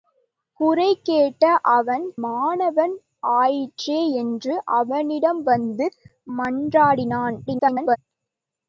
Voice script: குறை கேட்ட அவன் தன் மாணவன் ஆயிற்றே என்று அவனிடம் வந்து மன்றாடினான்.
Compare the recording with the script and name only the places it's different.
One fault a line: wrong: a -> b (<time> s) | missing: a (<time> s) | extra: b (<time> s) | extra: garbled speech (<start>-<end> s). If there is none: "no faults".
missing: தன் (2.1 s)
extra: garbled speech (7.5-8.0 s)